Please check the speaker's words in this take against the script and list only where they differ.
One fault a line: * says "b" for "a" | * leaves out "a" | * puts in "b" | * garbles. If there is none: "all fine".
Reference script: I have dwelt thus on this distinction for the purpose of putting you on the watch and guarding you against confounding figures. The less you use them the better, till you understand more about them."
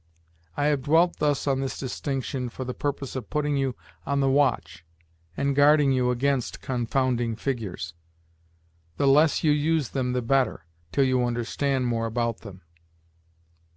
all fine